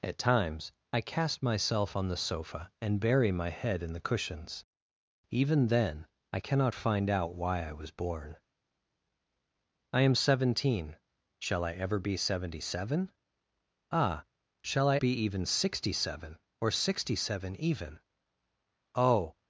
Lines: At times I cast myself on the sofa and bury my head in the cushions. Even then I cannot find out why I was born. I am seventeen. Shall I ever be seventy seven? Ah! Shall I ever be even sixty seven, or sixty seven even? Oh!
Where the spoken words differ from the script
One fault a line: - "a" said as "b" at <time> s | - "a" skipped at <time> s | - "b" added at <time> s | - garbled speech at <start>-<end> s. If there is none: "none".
- "ever" skipped at 15.0 s